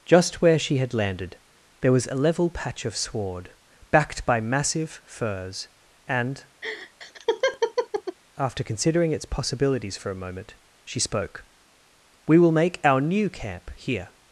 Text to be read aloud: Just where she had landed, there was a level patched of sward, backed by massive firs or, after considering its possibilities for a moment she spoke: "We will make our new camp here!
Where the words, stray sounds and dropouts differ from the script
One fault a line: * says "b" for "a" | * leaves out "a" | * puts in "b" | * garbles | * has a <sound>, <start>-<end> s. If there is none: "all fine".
* says "patch" for "patched"
* says "and" for "or"
* has a laugh, 6.6-8.2 s